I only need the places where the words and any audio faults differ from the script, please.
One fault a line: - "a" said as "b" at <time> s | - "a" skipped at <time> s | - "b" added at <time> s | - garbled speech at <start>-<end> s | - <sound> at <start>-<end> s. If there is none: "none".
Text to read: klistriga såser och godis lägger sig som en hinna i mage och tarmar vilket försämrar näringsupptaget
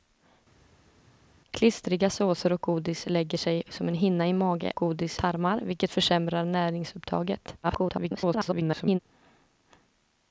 - "och" said as "godis" at 4.7 s
- garbled speech at 7.6-9.0 s